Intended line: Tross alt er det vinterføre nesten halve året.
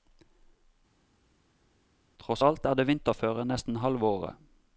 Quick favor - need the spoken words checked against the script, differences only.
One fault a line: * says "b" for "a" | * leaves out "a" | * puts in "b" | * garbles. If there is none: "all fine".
all fine